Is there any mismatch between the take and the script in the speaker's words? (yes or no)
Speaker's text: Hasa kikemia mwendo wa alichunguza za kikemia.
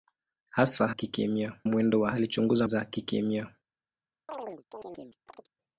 no